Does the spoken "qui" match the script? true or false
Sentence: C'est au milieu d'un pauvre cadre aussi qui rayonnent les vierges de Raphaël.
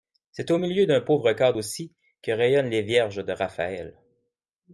false